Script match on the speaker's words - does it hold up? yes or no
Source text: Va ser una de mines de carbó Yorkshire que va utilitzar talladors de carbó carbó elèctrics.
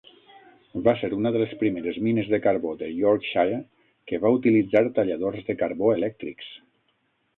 no